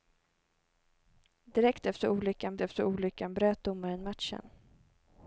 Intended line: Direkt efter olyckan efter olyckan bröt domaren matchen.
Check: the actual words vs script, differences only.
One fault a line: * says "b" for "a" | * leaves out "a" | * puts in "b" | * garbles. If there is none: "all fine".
all fine